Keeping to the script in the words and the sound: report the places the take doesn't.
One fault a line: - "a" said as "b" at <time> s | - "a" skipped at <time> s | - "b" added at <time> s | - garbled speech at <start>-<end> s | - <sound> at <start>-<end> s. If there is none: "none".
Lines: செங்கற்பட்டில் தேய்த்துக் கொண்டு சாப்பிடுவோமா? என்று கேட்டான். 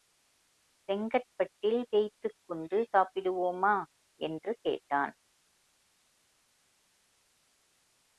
none